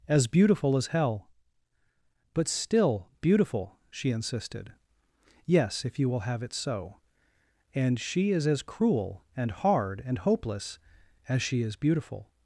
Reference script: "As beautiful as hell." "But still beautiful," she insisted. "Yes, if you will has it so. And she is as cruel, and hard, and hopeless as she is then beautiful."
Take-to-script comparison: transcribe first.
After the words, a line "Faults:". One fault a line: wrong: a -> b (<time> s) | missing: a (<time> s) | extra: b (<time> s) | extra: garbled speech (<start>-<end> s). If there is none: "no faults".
"As beautiful as hell." "But still beautiful," she insisted. "Yes, if you will have it so. And she is as cruel, and hard, and hopeless as she is beautiful."
Faults:
wrong: has -> have (6.2 s)
missing: then (11.8 s)